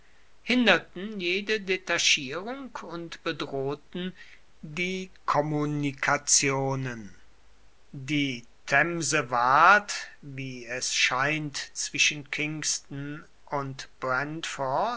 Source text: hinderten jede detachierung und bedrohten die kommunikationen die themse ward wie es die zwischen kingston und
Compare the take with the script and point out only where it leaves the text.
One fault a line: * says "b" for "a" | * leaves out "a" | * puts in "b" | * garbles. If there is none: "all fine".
* says "scheint" for "die"